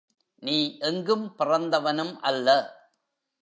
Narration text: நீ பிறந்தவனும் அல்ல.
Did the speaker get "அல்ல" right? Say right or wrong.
right